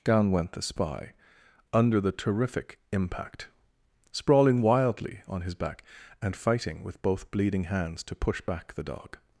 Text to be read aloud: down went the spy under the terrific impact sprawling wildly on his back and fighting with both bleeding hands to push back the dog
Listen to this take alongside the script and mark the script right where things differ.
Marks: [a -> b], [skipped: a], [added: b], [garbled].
down went the spy under the terrific impact sprawling wildly on his back and fighting with both bleeding hands to push back the dog